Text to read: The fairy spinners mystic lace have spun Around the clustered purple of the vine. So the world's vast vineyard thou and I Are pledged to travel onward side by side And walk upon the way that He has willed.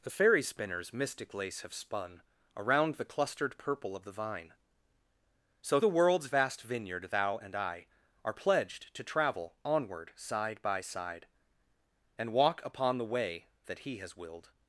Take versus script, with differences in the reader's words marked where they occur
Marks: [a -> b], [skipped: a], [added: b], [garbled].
The fairy spinners mystic lace have spun Around the clustered purple of the vine. So the world's vast vineyard thou and I Are pledged to travel onward side by side And walk upon the way that He has willed.